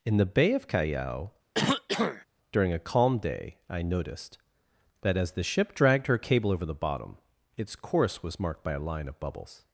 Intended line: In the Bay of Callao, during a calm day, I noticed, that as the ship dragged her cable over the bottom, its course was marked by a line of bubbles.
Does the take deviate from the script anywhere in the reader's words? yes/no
no